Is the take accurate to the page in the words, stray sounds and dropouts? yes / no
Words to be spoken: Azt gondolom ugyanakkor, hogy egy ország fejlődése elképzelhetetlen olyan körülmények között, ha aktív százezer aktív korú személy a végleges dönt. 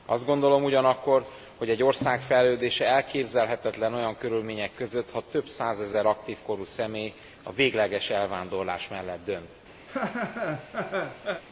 no